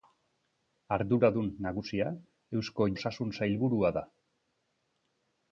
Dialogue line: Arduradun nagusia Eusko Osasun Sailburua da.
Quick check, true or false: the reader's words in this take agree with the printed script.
true